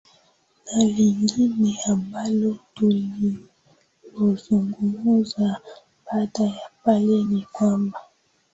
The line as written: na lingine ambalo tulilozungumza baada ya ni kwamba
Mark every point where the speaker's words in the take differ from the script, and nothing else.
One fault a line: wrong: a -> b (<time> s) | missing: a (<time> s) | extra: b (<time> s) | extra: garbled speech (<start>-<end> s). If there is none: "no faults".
extra: pale (6.8 s)